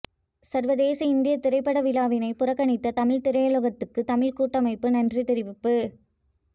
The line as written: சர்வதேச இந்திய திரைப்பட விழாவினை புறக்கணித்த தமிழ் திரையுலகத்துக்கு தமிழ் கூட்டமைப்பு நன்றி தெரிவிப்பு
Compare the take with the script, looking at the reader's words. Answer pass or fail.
pass